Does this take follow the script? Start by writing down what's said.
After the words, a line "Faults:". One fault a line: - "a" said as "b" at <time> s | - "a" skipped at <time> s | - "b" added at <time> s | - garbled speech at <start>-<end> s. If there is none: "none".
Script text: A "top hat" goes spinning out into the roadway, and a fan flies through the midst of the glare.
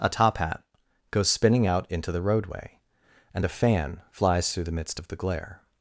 A "top hat" goes spinning out into the roadway, and a fan flies through the midst of the glare.
Faults:
none